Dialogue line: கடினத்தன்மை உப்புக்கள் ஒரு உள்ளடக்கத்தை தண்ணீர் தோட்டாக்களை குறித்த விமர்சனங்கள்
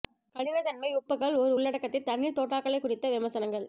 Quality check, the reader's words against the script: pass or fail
pass